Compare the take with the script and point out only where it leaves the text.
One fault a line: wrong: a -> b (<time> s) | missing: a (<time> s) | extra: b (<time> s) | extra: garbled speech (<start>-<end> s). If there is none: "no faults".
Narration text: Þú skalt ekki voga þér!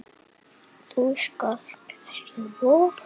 no faults